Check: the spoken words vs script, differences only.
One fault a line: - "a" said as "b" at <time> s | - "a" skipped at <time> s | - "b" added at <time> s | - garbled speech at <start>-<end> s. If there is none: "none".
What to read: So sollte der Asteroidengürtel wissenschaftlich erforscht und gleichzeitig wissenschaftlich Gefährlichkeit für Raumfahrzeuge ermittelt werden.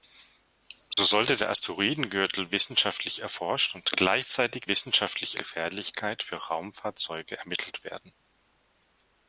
none